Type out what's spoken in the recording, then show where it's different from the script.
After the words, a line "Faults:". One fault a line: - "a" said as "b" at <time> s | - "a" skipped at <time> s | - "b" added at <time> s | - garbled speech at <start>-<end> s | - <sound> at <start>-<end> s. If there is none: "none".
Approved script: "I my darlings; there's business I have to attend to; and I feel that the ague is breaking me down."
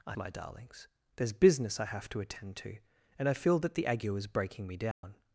"I my darlings; there's business I have to attend to; and I feel that the ague is breaking me down."
Faults:
- dropout at 4.9-5.0 s